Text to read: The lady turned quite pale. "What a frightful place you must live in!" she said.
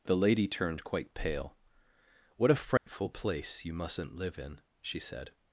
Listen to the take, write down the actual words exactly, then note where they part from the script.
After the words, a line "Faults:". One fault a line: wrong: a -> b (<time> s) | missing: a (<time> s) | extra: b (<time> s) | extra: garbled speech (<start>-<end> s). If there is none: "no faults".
The lady turned quite pale. "What a frightful place you mustn't live in!" she said.
Faults:
wrong: must -> mustn't (3.7 s)